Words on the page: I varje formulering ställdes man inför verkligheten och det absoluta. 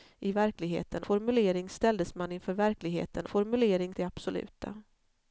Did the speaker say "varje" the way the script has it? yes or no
no